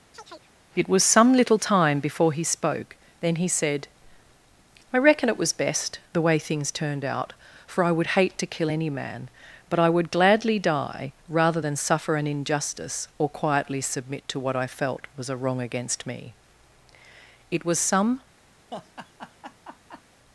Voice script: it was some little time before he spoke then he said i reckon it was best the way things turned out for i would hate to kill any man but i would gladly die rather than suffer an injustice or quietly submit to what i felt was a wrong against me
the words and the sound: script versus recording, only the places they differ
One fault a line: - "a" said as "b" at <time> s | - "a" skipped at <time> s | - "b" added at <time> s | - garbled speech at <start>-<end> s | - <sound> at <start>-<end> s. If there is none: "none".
- chirp at 0.1-0.5 s
- "it was some" added at 17.5 s
- laugh at 18.7-20.0 s